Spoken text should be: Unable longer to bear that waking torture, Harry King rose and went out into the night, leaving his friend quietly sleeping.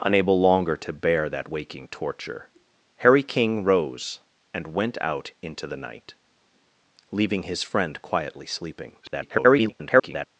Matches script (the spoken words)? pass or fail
fail